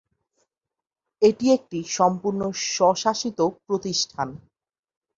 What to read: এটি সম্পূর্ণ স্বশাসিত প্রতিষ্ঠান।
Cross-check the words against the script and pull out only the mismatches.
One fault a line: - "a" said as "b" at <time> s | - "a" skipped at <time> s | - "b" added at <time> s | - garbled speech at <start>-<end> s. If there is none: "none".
- "একটি" added at 1.5 s